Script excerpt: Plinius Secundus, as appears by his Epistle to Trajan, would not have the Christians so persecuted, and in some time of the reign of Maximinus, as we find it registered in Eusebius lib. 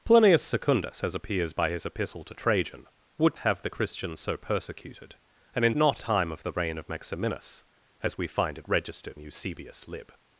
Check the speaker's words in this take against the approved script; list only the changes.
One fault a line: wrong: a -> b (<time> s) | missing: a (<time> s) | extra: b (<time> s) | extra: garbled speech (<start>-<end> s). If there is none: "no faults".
missing: not (3.4 s)
wrong: some -> not (5.7 s)
missing: in (9.2 s)